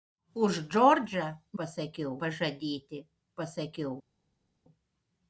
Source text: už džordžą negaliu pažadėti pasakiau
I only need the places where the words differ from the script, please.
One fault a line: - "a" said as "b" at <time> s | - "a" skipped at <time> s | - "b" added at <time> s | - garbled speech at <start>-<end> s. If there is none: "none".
- "negaliu" said as "pasakiau" at 1.6 s